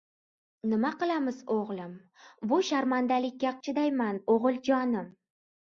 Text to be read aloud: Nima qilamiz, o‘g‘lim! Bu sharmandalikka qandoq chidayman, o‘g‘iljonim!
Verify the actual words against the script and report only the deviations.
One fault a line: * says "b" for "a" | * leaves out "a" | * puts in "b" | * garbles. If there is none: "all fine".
* leaves out "qandoq"